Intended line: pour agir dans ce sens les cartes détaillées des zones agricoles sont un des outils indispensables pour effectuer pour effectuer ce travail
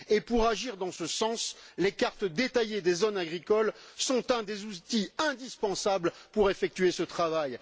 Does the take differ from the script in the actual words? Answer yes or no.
yes